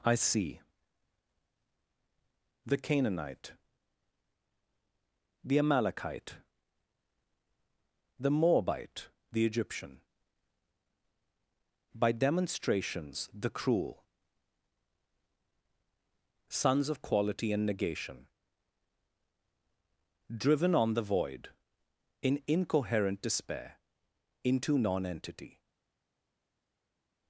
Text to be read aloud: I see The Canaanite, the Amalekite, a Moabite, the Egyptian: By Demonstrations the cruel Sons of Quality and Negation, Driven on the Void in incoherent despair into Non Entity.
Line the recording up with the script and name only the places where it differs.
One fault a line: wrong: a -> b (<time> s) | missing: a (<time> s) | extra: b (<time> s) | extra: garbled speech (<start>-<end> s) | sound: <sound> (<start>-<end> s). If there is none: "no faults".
wrong: a -> the (8.2 s)